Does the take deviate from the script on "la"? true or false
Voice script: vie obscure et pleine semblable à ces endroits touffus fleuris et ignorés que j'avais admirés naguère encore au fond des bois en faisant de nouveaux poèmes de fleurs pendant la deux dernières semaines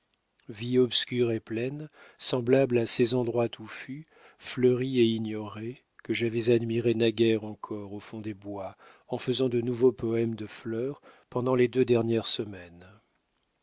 true